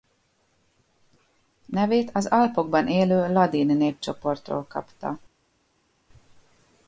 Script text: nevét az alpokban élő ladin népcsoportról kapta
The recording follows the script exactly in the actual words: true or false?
true